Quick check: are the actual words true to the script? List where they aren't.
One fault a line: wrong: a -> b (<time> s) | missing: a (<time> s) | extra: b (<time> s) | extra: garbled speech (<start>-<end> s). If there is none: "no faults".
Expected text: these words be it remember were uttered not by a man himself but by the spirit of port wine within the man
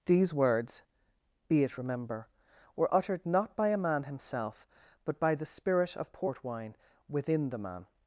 no faults